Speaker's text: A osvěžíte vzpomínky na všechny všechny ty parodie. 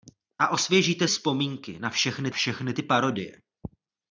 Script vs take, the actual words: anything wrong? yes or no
no